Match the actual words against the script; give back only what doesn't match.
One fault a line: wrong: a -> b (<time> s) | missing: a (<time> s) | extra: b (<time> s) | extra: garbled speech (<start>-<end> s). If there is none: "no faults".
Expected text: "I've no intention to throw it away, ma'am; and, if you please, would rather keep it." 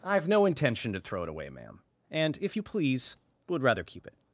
no faults